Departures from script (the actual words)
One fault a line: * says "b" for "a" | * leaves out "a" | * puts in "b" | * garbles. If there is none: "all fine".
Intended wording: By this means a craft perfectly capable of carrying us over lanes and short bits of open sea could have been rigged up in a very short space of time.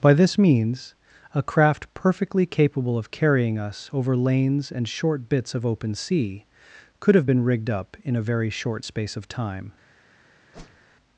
all fine